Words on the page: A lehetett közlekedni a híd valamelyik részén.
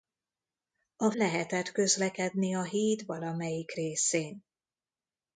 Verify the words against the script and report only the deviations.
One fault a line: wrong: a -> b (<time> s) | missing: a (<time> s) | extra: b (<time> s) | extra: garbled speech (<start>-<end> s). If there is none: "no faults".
no faults